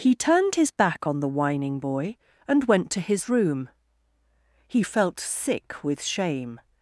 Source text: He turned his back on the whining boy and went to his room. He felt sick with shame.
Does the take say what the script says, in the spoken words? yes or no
yes